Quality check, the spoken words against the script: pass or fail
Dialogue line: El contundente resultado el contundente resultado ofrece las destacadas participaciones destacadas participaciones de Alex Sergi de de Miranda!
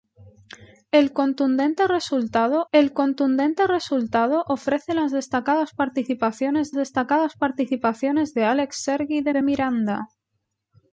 pass